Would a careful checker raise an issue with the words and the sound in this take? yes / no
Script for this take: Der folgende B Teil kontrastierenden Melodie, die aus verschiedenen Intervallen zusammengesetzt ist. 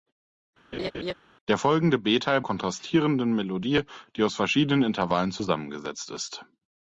yes